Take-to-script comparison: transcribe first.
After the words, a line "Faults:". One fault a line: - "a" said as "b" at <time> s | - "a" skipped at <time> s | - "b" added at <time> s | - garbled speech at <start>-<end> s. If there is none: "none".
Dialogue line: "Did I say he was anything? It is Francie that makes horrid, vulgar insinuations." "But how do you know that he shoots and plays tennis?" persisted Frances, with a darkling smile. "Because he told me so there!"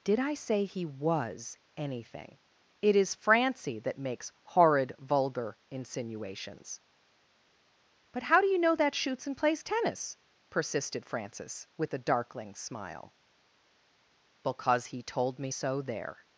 "Did I say he was anything? It is Francie that makes horrid, vulgar insinuations." "But how do you know that shoots and plays tennis?" persisted Frances, with a darkling smile. "Because he told me so there!"
Faults:
- "he" skipped at 8.9 s